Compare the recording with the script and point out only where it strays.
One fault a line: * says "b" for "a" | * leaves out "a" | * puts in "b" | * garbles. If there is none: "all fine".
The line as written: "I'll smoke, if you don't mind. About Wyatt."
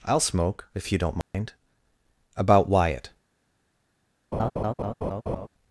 all fine